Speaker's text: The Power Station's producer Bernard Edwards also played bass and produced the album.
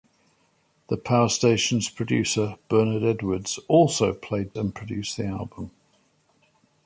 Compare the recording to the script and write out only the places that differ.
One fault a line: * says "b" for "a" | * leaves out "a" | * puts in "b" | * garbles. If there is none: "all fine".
* leaves out "bass"